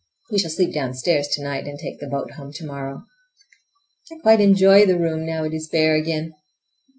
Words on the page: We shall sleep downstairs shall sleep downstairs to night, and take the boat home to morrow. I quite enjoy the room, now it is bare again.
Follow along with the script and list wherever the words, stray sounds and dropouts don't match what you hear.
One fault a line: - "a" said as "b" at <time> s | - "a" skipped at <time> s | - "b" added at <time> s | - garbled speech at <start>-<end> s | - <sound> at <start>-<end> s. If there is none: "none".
- "shall sleep downstairs" skipped at 1.3 s